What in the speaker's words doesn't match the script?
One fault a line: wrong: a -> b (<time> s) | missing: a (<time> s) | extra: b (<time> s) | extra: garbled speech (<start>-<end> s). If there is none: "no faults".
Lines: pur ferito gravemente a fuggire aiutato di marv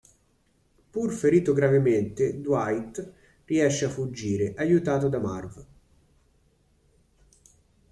extra: dwight riesce (2.4 s)
wrong: di -> da (5.1 s)